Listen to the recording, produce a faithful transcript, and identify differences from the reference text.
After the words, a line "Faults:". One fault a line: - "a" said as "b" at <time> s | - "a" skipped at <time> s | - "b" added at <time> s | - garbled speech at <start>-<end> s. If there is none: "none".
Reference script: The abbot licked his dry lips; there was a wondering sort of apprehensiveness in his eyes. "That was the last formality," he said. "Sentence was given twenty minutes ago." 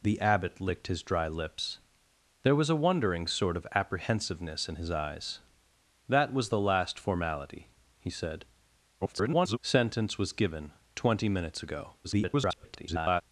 The abbot licked his dry lips; there was a wondering sort of apprehensiveness in his eyes. "That was the last formality," he said. [garbled] "Sentence was given twenty minutes ago." [garbled]
Faults:
- garbled speech at 9.0-9.6 s
- garbled speech at 12.0-13.2 s